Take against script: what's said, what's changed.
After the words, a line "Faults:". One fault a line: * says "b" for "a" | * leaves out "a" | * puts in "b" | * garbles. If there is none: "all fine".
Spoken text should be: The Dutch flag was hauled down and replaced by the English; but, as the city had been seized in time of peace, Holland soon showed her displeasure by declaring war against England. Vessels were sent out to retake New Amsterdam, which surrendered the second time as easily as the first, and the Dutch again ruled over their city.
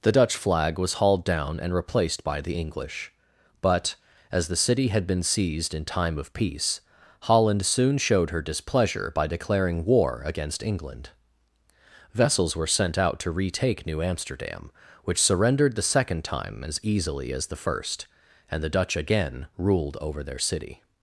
The Dutch flag was hauled down and replaced by the English; but, as the city had been seized in time of peace, Holland soon showed her displeasure by declaring war against England. Vessels were sent out to retake New Amsterdam, which surrendered the second time as easily as the first, and the Dutch again ruled over their city.
Faults:
all fine